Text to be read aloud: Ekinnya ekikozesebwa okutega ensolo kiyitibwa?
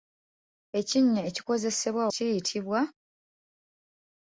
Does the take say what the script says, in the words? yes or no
no